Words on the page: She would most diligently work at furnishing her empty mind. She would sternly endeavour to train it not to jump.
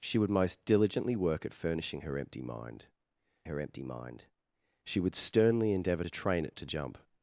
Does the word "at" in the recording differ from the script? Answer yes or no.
no